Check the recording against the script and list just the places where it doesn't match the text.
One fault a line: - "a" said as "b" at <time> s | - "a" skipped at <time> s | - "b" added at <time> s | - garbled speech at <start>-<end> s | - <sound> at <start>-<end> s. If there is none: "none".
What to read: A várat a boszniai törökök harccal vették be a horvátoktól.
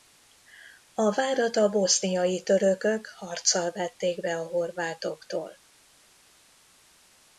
none